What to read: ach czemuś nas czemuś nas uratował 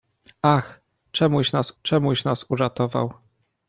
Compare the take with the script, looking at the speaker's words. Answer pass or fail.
pass